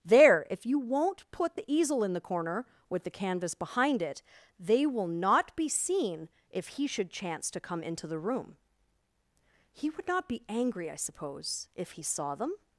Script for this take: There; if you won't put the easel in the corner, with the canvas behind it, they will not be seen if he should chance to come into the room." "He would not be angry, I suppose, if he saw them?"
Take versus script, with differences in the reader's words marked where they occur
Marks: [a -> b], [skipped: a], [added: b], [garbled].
There; if you won't put the easel in the corner, with the canvas behind it, they will not be seen if he should chance to come into the room." "He would not be angry, I suppose, if he saw them?"